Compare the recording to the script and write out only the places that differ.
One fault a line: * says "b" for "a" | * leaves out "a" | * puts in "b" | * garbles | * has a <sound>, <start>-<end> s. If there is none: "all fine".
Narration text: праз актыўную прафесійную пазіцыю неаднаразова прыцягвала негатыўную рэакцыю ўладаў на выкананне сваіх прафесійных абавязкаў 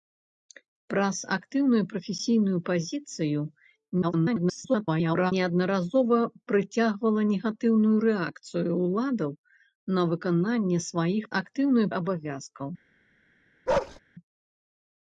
* garbles
* says "актыўную" for "прафесійных"
* has a bark, 13.7-14.0 s